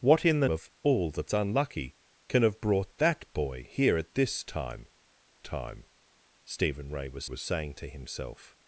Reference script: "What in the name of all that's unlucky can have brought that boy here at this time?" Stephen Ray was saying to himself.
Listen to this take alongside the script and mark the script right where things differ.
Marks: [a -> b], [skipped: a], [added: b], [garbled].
"What in the [skipped: name] of all that's unlucky can have brought that boy here at this time?" [added: time] Stephen Ray was [added: was] saying to himself.